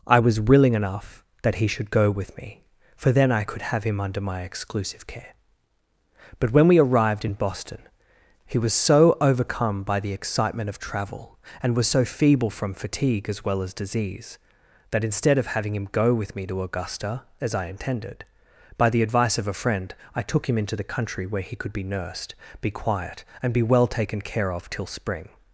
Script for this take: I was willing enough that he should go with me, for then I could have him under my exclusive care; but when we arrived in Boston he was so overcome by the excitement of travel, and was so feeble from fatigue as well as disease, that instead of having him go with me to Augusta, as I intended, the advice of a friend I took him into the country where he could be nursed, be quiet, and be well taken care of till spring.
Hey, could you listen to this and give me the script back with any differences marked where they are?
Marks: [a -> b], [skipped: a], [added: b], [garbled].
I was willing enough that he should go with me, for then I could have him under my exclusive care; but when we arrived in Boston he was so overcome by the excitement of travel, and was so feeble from fatigue as well as disease, that instead of having him go with me to Augusta, as I intended, [added: by] the advice of a friend I took him into the country where he could be nursed, be quiet, and be well taken care of till spring.